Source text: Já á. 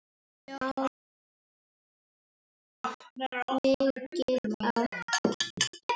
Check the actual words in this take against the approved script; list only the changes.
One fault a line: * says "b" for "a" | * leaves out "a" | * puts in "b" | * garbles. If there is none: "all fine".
all fine